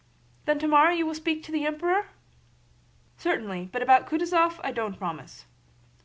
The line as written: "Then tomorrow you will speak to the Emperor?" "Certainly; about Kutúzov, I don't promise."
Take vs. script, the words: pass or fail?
fail